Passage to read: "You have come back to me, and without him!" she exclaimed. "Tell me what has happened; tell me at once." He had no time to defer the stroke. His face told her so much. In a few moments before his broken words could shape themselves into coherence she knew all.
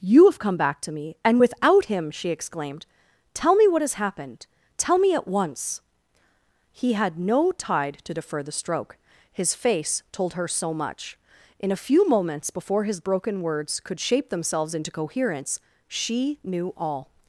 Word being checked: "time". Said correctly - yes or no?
no